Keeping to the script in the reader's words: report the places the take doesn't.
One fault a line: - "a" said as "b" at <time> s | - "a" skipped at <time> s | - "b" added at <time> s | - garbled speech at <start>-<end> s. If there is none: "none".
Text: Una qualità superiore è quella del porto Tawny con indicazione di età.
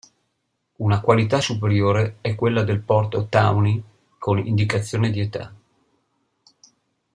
none